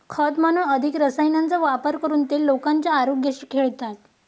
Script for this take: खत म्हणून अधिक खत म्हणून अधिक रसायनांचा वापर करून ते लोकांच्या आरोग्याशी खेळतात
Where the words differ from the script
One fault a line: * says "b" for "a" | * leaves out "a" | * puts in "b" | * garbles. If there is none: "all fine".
* leaves out "खत म्हणून अधिक"